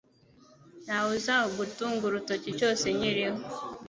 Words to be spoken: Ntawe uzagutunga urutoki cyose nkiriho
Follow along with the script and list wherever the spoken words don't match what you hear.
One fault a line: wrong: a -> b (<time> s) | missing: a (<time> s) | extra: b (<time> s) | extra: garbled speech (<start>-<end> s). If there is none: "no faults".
no faults